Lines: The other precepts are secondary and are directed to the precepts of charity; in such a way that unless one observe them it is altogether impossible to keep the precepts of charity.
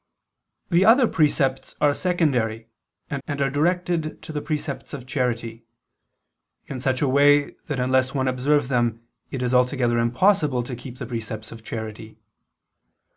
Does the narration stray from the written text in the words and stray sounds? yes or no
yes